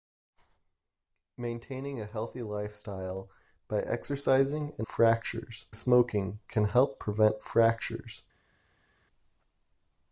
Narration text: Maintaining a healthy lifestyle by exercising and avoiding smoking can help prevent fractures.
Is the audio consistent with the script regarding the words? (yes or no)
no